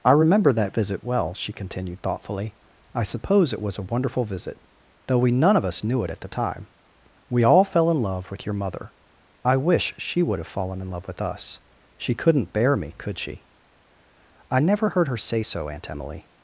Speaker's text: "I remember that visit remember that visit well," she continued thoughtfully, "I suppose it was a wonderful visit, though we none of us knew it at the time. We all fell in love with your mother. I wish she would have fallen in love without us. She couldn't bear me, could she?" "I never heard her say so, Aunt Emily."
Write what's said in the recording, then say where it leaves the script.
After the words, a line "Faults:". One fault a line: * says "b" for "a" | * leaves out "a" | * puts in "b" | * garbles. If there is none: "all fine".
"I remember that visit well," she continued thoughtfully, "I suppose it was a wonderful visit, though we none of us knew it at the time. We all fell in love with your mother. I wish she would have fallen in love with us. She couldn't bear me, could she?" "I never heard her say so, Aunt Emily."
Faults:
* leaves out "remember that visit"
* says "with" for "without"